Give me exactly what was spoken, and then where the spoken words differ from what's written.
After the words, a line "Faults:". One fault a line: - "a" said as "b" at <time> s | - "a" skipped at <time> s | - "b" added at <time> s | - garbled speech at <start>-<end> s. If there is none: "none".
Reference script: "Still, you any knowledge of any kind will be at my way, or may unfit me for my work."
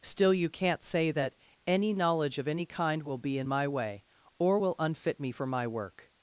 "Still, you can't say that any knowledge of any kind will be in my way, or will unfit me for my work."
Faults:
- "can't say that" added at 0.5 s
- "at" said as "in" at 3.4 s
- "may" said as "will" at 4.6 s